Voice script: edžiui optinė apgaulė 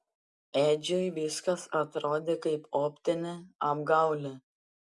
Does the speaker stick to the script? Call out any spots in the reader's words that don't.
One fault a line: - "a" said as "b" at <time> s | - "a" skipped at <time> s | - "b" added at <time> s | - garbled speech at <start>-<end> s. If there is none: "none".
- "viskas atrodė kaip" added at 1.2 s